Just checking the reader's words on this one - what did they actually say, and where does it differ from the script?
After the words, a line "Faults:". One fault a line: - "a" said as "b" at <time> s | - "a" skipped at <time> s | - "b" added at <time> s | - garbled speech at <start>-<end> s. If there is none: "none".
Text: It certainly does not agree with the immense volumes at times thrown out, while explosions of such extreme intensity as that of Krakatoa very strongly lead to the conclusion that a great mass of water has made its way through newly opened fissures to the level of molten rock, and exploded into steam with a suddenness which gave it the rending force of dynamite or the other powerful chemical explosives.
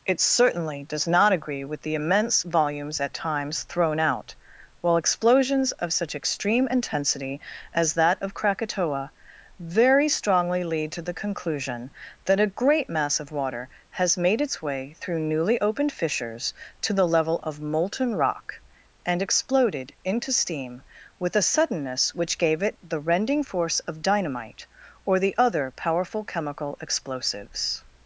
It certainly does not agree with the immense volumes at times thrown out, while explosions of such extreme intensity as that of Krakatoa very strongly lead to the conclusion that a great mass of water has made its way through newly opened fissures to the level of molten rock, and exploded into steam with a suddenness which gave it the rending force of dynamite or the other powerful chemical explosives.
Faults:
none